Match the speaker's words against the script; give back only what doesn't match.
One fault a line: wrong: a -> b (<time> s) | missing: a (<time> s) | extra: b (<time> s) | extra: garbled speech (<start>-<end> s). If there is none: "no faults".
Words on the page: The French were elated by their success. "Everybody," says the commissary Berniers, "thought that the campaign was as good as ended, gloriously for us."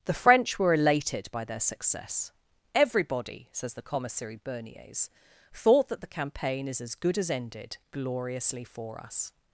wrong: was -> is (6.7 s)